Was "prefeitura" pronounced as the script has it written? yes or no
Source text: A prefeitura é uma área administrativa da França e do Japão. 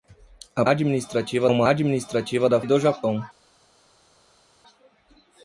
no